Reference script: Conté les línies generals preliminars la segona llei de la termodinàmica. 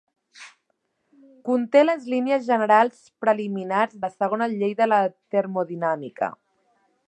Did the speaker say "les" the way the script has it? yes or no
yes